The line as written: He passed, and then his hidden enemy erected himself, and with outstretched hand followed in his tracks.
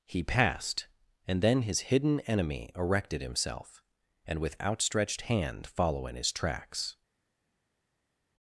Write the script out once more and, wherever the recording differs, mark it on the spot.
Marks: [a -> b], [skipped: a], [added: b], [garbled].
He passed, and then his hidden enemy erected himself, and with outstretched hand [followed -> follow] in his tracks.